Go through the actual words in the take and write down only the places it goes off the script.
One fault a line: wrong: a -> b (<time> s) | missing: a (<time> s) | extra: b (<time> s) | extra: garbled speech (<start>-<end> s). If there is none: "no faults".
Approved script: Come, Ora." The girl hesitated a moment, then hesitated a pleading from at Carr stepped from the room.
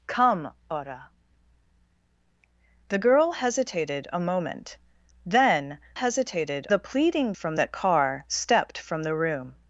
no faults